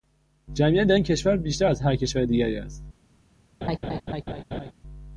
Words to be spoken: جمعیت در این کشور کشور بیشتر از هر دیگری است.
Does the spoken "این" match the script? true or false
true